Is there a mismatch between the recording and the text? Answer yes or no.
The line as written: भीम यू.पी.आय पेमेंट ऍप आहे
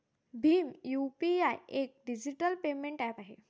yes